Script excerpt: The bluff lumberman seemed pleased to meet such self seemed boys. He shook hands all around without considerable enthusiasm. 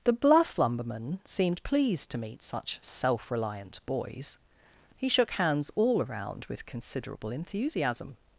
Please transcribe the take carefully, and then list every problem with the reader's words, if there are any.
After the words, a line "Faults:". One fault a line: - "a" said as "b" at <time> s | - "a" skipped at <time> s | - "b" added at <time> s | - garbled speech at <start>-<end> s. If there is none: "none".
The bluff lumberman seemed pleased to meet such self reliant boys. He shook hands all around with considerable enthusiasm.
Faults:
- "seemed" said as "reliant" at 3.3 s
- "without" said as "with" at 6.5 s